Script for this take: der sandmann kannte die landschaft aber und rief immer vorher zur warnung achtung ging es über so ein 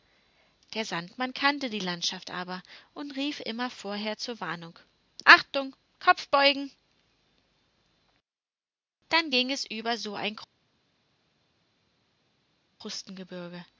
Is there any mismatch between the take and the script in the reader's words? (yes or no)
yes